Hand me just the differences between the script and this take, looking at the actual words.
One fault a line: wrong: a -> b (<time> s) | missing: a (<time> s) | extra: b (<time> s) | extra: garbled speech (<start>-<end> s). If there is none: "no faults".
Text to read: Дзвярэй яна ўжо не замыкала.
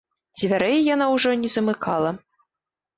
no faults